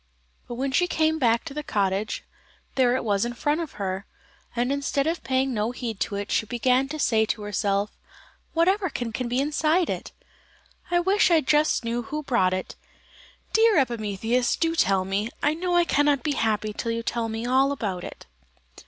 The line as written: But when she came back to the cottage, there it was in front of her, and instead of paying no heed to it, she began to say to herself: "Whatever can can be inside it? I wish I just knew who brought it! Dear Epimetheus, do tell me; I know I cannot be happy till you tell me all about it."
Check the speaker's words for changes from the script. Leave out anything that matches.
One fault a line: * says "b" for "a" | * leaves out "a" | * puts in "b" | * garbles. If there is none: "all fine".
all fine